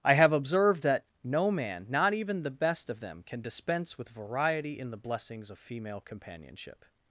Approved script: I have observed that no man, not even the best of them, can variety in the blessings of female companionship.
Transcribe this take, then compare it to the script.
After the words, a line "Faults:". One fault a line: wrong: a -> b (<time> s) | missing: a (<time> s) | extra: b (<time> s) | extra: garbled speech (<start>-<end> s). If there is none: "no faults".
I have observed that no man, not even the best of them, can dispense with variety in the blessings of female companionship.
Faults:
extra: dispense with (3.4 s)